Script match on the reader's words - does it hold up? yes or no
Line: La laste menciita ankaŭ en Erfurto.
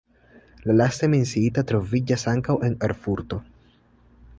no